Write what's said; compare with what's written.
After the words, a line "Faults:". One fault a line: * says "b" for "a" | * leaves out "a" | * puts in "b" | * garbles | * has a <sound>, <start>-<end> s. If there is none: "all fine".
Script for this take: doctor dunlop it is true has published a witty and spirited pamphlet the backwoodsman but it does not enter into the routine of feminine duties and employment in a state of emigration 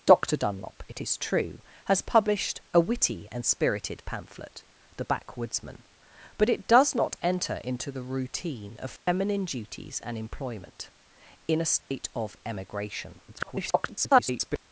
doctor dunlop it is true has published a witty and spirited pamphlet the backwoodsman but it does not enter into the routine of feminine duties and employment in a state of emigration [garbled]
Faults:
* has a dropout, 9.0-9.1 s
* has a dropout, 11.8-11.9 s
* garbles